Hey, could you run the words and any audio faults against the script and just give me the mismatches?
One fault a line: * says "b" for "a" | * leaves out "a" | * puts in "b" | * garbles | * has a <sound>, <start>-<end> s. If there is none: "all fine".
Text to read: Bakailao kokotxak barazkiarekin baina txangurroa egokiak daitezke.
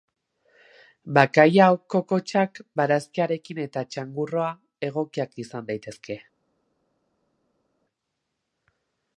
* says "eta" for "baina"
* puts in "izan"